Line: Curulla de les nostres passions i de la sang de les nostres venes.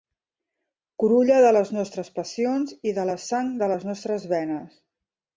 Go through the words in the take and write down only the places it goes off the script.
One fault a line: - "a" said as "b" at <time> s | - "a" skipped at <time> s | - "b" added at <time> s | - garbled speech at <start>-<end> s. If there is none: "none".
none